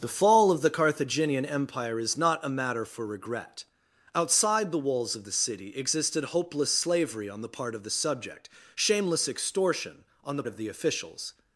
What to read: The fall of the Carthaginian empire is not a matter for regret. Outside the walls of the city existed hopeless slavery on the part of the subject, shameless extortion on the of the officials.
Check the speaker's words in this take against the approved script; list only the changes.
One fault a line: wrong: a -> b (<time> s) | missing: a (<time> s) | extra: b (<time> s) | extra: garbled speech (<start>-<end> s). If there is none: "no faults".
no faults